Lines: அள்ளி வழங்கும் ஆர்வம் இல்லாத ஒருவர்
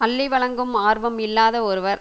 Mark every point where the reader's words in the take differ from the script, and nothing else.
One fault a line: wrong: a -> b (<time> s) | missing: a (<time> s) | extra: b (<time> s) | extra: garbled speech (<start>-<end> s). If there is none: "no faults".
no faults